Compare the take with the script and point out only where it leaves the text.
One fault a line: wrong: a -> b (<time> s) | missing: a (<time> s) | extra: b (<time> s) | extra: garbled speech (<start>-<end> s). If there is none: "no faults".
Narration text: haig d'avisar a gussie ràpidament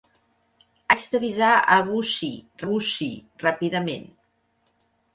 extra: gussie (2.7 s)